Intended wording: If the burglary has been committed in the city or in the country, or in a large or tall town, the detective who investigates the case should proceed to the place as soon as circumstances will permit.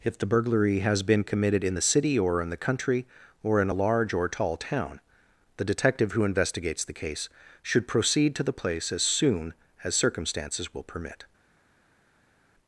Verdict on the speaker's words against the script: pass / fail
pass